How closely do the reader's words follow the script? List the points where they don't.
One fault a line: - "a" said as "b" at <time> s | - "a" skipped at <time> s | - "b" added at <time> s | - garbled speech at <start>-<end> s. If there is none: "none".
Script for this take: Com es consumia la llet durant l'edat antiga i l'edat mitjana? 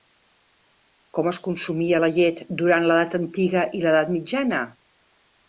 none